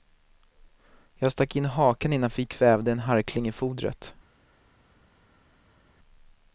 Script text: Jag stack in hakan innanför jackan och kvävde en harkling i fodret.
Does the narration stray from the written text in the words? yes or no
yes